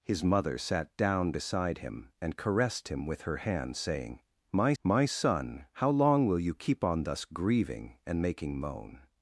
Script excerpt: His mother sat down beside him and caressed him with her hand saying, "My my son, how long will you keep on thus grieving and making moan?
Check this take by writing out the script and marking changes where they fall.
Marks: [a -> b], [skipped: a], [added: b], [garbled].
His mother sat down beside him and caressed him with her hand saying, "My my son, how long will you keep on thus grieving and making moan?